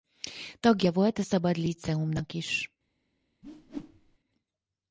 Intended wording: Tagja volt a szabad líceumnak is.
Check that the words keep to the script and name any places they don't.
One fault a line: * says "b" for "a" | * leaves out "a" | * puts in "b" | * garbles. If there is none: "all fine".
all fine